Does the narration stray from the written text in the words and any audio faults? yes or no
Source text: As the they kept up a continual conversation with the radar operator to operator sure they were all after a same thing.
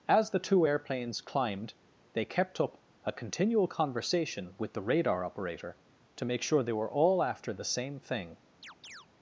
yes